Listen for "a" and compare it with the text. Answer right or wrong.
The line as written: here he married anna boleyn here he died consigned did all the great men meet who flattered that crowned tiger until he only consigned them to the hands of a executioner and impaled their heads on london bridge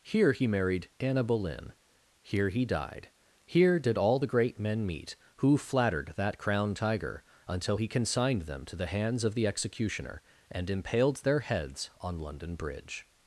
wrong